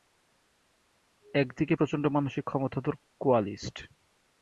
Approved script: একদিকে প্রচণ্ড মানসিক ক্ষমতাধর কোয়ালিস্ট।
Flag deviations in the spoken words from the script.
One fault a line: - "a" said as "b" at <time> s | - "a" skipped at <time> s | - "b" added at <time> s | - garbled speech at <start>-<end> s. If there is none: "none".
none